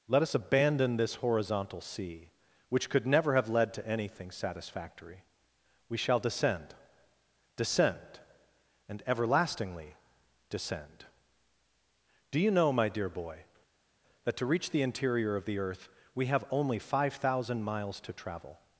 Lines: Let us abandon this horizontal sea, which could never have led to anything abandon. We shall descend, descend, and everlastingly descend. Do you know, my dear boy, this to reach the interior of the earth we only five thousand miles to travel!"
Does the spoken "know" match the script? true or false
true